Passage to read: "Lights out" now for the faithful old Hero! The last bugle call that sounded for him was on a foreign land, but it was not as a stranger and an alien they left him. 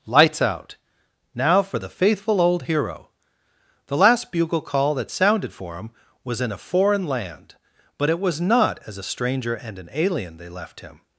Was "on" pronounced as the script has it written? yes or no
no